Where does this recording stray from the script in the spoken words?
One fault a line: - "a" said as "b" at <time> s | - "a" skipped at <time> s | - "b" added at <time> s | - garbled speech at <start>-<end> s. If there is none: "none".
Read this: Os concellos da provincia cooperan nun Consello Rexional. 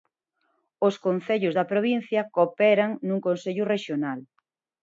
none